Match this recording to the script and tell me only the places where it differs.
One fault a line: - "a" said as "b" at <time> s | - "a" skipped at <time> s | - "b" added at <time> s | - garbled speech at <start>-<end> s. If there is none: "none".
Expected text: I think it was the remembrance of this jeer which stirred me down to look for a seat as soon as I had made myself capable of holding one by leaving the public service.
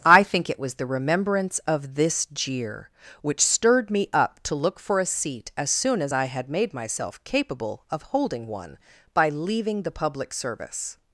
- "down" said as "up" at 4.1 s